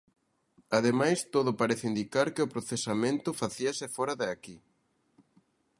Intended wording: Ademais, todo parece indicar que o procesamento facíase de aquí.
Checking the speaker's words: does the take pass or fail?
fail